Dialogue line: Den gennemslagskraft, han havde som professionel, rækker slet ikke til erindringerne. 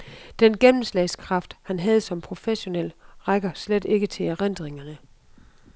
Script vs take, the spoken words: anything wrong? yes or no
no